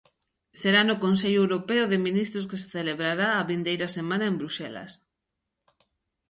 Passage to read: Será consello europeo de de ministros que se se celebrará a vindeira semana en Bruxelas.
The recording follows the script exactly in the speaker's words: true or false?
false